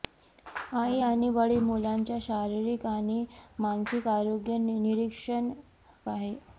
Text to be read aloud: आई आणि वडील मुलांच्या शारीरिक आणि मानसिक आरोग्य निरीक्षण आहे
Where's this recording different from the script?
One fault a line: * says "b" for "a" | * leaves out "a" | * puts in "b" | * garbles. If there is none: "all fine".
all fine